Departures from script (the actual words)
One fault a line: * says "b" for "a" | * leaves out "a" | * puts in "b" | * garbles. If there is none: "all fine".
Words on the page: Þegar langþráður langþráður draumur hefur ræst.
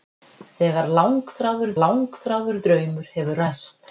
all fine